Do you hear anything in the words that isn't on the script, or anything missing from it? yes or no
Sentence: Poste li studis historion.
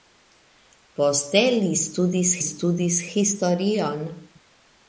yes